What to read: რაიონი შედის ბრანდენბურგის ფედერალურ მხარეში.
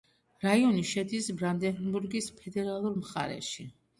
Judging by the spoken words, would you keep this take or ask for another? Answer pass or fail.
pass